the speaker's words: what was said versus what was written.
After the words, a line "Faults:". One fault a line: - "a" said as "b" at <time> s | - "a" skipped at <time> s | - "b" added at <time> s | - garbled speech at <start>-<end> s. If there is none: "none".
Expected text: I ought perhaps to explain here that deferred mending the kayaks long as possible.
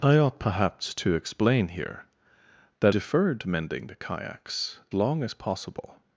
I ought perhaps to explain here that deferred mending the kayaks long as possible.
Faults:
none